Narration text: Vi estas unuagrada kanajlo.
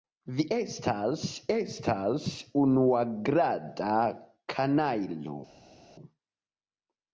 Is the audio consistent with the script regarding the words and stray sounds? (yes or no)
no